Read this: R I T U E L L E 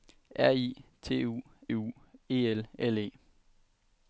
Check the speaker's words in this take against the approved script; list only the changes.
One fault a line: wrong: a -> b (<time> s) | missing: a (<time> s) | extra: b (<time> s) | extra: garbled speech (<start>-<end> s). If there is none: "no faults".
extra: U (1.7 s)